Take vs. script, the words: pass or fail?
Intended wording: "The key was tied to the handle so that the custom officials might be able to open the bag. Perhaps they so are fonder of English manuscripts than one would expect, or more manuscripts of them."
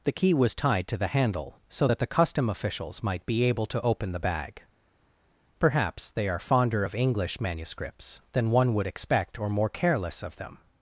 fail